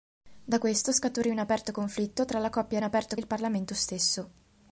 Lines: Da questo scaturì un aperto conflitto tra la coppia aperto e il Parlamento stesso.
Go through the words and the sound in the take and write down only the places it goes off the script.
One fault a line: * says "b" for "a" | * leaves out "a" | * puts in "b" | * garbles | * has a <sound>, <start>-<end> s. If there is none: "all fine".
all fine